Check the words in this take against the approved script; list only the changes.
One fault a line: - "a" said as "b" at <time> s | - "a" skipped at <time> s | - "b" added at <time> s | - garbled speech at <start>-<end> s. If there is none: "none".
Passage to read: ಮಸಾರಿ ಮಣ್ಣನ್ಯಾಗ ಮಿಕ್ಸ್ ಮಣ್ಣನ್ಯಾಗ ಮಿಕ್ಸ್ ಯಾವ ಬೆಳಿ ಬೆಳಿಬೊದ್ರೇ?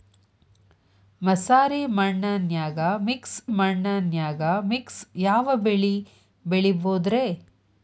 none